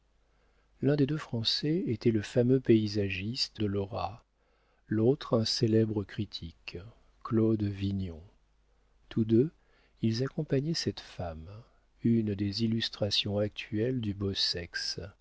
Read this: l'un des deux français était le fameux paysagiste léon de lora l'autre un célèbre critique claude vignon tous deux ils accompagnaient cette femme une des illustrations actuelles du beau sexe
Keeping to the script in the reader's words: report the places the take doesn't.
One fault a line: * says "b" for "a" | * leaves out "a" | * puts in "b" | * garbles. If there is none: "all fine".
* leaves out "léon"